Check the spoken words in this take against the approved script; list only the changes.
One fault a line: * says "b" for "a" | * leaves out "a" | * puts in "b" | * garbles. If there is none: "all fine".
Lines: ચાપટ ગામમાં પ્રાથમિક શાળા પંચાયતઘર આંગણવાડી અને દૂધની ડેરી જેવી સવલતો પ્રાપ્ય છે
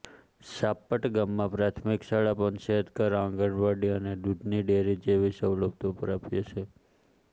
all fine